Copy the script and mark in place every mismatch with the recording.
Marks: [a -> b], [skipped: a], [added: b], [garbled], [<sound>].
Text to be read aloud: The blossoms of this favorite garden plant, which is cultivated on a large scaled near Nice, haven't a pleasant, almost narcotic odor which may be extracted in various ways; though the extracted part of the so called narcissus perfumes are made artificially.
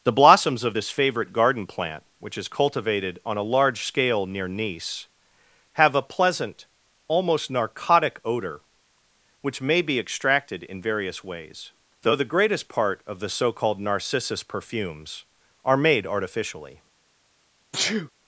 The blossoms of this favorite garden plant, which is cultivated on a large [scaled -> scale] near Nice, [haven't -> have] a pleasant, almost narcotic odor which may be extracted in various ways; though the [extracted -> greatest] part of the so called narcissus perfumes are made artificially. [sneeze]